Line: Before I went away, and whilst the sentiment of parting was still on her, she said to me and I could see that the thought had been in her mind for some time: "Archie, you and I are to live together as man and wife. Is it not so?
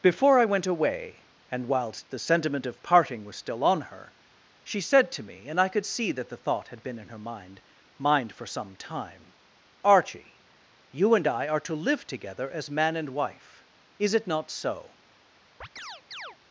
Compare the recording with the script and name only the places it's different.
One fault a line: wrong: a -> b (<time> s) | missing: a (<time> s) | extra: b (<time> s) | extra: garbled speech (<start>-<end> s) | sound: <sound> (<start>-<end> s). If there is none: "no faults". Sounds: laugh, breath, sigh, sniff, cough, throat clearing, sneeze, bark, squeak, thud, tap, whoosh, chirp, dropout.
extra: mind (8.0 s)
sound: chirp (15.6-16.4 s)